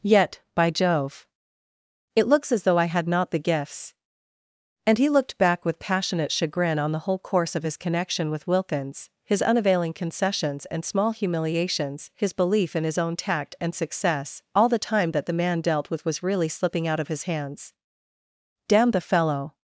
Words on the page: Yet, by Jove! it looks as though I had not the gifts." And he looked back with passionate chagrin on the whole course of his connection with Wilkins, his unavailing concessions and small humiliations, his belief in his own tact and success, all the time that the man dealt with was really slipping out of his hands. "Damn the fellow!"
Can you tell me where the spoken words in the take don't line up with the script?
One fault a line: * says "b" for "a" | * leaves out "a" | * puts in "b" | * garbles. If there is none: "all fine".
all fine